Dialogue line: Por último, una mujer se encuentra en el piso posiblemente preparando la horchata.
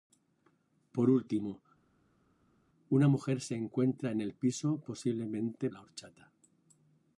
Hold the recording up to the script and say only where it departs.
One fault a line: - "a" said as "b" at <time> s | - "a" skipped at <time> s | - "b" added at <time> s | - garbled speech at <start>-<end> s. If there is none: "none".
- "preparando" skipped at 5.7 s